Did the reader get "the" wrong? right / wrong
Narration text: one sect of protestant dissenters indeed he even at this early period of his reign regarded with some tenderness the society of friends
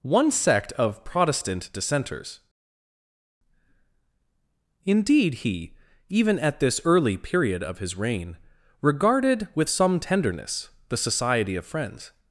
right